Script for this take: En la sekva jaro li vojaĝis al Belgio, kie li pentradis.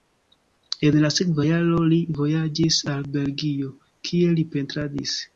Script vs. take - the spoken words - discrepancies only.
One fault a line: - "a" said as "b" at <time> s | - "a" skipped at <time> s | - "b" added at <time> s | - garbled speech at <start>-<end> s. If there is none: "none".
none